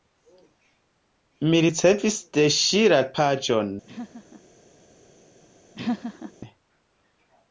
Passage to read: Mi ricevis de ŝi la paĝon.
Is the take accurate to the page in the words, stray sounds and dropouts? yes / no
no